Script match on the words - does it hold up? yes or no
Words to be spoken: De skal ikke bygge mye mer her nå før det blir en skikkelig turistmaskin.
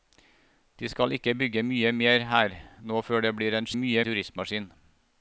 no